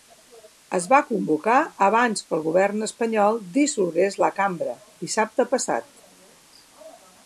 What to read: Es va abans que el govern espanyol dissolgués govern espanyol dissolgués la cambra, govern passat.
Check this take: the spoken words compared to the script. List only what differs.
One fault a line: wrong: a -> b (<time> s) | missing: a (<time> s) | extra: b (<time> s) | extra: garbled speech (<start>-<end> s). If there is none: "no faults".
extra: convocar (1.1 s)
missing: govern espanyol dissolgués (4.2 s)
wrong: govern -> dissabte (5.1 s)